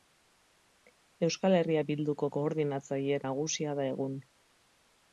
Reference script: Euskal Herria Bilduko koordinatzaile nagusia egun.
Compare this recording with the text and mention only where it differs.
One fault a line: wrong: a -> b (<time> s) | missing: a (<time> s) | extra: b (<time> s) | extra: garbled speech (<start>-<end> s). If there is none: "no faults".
extra: da (3.8 s)